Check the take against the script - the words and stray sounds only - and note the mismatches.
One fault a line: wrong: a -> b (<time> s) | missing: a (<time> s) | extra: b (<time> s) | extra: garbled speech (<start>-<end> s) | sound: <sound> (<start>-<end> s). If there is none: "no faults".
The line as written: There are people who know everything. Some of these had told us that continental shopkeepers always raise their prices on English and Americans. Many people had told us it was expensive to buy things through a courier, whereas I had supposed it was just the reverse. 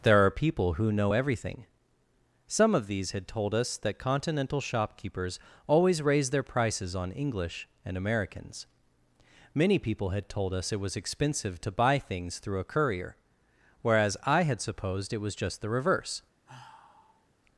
sound: sigh (16.5-17.3 s)